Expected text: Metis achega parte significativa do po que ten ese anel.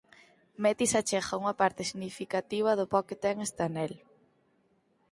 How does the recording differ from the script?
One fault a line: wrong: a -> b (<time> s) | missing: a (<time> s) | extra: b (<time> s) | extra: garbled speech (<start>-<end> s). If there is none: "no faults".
extra: unha (1.4 s)
wrong: ese -> este (3.5 s)